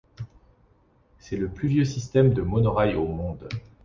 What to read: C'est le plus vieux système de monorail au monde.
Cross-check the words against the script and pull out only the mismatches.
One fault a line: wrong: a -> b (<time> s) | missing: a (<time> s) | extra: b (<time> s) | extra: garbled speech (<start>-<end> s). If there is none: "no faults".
no faults